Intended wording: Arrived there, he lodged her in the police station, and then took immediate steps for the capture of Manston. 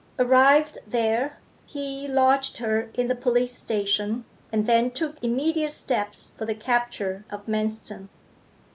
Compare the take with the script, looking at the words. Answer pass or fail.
pass